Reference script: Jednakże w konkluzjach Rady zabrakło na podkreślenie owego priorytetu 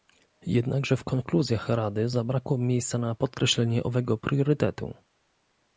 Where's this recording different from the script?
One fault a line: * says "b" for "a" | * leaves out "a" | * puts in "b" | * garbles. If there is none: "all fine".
* puts in "miejsca"